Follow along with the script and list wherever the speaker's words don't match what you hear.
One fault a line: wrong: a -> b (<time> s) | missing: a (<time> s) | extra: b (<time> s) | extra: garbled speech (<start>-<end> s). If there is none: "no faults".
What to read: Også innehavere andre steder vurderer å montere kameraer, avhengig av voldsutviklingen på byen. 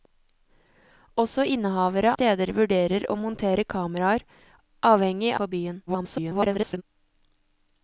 missing: andre (2.1 s)
missing: av voldsutviklingen (5.3 s)
extra: garbled speech (5.9-6.8 s)